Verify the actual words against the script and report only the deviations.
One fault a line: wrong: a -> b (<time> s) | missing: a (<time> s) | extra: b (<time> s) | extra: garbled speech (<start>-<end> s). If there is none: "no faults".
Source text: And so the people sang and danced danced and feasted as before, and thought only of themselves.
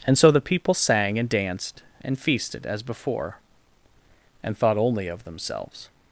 missing: danced (1.8 s)